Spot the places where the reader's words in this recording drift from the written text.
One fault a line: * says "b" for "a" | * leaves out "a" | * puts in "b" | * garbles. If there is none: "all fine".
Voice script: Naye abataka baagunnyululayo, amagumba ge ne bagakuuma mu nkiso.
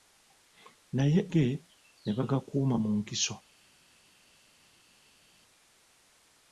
* leaves out "abataka baagunnyululayo amagumba"